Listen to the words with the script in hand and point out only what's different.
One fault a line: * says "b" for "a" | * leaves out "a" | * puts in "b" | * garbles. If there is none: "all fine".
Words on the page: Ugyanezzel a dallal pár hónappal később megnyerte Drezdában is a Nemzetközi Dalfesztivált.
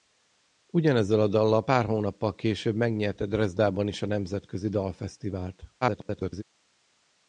* garbles